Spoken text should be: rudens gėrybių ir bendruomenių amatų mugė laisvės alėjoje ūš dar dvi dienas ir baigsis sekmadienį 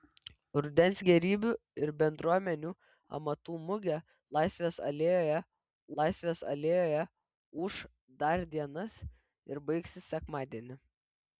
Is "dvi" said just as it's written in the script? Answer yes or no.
no